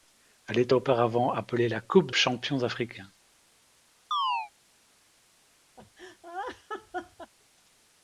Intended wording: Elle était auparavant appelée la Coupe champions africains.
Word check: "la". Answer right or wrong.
right